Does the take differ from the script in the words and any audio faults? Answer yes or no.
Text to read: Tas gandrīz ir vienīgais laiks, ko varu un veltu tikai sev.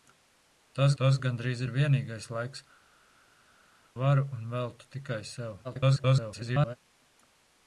yes